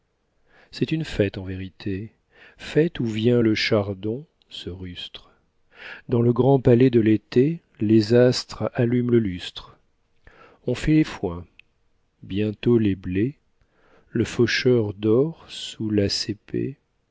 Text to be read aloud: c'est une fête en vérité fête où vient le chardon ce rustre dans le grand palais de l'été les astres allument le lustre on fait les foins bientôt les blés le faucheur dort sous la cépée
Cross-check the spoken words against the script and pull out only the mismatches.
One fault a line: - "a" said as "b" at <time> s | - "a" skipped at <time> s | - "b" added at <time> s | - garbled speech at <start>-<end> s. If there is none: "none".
none